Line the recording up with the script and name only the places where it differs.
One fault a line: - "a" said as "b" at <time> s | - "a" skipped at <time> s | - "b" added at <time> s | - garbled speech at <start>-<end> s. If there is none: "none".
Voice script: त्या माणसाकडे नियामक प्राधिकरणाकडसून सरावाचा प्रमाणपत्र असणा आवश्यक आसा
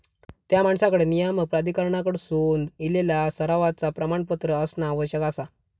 - "इलेला" added at 2.8 s